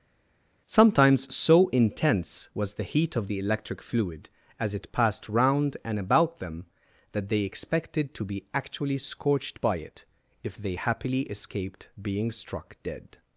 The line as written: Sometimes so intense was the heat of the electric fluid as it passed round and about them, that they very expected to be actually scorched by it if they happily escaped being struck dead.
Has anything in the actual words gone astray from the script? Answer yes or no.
yes